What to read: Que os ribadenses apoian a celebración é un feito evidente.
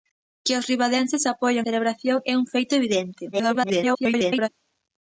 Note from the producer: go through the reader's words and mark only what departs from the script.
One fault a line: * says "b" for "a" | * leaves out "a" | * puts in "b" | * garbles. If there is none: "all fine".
* leaves out "a"
* garbles